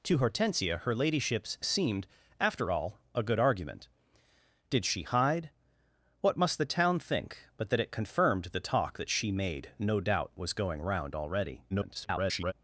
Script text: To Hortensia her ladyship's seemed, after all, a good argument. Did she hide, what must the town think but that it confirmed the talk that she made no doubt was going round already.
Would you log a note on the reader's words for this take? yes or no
yes